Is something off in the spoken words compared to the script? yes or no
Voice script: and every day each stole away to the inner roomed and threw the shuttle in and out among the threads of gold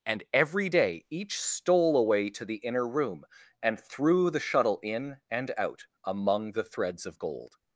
yes